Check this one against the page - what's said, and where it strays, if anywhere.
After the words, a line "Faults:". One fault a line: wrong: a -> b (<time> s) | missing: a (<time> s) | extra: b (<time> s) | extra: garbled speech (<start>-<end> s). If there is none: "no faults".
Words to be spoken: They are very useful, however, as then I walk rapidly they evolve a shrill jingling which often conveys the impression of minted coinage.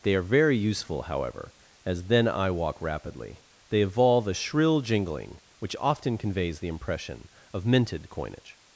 They are very useful, however, as then I walk rapidly they evolve a shrill jingling which often conveys the impression of minted coinage.
Faults:
no faults